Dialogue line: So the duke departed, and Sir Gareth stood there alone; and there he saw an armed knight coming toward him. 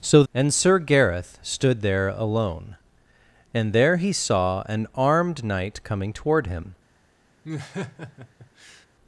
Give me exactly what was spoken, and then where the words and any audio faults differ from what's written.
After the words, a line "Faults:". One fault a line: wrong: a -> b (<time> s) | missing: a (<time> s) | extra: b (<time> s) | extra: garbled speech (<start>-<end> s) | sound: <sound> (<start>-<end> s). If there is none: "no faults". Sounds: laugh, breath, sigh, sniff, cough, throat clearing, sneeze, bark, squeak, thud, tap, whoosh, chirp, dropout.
So and Sir Gareth stood there alone; and there he saw an armed knight coming toward him.
Faults:
missing: the duke departed (0.2 s)
sound: laugh (7.4-8.9 s)